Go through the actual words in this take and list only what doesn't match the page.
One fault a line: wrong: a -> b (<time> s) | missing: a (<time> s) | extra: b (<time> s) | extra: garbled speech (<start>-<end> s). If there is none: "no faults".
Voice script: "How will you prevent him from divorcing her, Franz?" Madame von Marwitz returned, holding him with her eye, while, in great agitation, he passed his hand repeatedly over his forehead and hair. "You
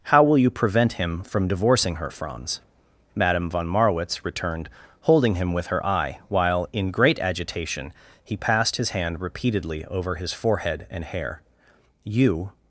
no faults